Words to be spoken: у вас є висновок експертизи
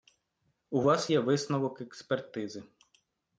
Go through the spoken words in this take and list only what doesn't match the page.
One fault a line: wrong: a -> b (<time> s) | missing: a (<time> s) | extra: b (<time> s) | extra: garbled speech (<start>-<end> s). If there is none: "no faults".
no faults